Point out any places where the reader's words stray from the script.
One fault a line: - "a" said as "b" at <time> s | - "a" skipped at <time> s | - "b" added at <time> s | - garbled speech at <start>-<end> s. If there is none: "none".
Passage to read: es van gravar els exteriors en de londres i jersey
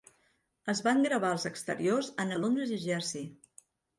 none